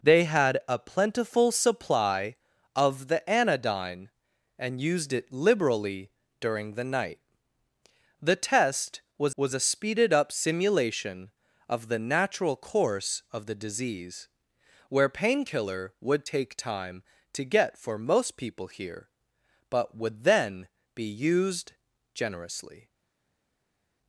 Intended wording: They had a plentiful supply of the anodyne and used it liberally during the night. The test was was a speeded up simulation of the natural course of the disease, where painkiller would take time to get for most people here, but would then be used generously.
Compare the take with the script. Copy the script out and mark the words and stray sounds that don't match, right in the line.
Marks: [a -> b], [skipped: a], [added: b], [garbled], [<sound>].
They had a plentiful supply of the anodyne and used it liberally during the night. The test was was a speeded up simulation of the natural course of the disease, where painkiller would take time to get for most people here, but would then be used generously.